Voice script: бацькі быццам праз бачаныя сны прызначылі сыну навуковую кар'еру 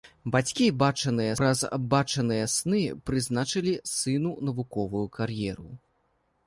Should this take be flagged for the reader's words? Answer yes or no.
yes